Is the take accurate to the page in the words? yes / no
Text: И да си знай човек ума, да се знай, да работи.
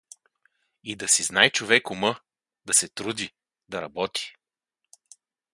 no